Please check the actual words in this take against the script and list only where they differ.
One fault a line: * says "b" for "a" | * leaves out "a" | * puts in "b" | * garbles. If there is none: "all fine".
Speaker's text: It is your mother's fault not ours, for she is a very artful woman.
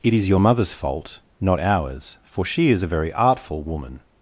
all fine